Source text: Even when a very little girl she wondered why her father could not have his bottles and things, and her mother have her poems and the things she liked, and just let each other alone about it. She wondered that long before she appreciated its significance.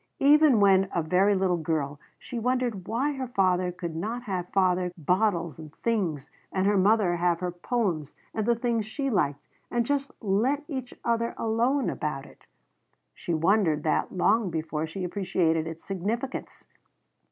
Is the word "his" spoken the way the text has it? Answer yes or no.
no